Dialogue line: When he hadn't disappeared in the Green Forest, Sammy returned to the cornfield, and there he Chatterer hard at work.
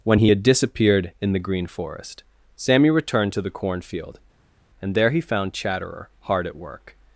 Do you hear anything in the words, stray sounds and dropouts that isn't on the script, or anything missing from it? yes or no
yes